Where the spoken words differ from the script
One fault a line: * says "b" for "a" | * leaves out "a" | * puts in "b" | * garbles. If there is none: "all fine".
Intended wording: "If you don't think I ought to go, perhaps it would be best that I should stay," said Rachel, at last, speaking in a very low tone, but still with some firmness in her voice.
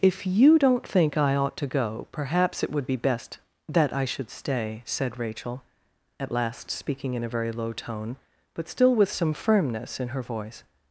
all fine